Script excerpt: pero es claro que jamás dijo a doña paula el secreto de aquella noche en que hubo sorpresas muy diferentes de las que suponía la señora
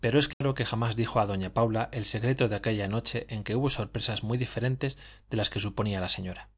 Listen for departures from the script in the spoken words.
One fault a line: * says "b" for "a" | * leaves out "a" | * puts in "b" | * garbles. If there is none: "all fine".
all fine